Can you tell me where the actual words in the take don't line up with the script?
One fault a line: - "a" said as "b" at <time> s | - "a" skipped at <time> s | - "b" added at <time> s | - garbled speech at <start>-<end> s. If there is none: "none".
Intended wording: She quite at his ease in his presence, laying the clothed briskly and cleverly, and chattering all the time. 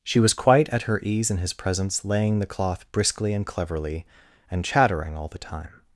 - "was" added at 0.2 s
- "his" said as "her" at 0.8 s
- "clothed" said as "cloth" at 2.5 s